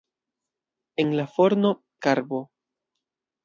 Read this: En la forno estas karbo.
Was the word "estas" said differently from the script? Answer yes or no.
yes